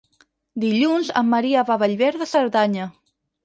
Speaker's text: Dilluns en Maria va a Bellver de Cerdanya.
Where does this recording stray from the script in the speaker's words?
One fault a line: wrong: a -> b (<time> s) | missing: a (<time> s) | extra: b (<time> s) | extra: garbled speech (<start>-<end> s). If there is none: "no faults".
no faults